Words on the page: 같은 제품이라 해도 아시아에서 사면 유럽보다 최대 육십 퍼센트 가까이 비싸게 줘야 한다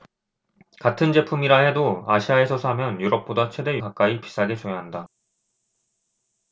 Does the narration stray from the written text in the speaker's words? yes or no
yes